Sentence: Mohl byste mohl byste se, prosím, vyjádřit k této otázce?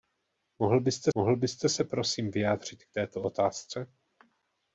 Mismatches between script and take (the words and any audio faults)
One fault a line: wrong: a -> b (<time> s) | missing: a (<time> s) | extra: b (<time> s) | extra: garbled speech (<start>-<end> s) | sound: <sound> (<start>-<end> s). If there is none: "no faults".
no faults